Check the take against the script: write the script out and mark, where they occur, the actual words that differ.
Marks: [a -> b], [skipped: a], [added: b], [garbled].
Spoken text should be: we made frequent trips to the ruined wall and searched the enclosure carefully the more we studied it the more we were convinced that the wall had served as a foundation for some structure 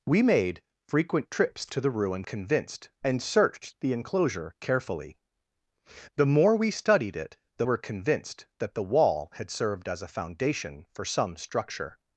we made frequent trips to the ruined [wall -> convinced] and searched the enclosure carefully the more we studied it the [skipped: more we] were convinced that the wall had served as a foundation for some structure